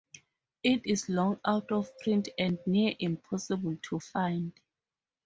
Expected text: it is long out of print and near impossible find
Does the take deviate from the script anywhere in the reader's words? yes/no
yes